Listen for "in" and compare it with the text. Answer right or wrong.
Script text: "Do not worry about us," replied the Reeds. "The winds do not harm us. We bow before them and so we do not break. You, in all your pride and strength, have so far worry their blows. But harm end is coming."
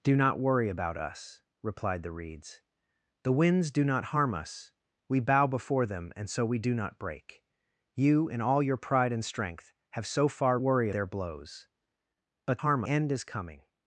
right